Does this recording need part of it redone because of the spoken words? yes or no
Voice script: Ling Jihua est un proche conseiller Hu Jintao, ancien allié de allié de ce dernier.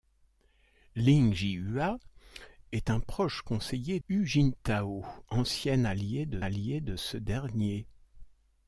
no